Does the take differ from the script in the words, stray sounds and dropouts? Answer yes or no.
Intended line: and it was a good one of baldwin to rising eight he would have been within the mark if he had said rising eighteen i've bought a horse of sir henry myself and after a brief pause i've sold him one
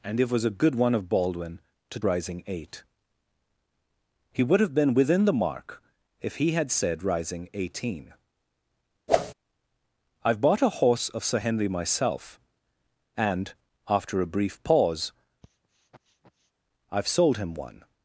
yes